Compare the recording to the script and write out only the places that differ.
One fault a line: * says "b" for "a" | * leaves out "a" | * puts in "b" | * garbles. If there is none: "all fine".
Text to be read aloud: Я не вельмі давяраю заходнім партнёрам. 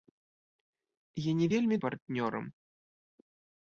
* leaves out "давяраю заходнім"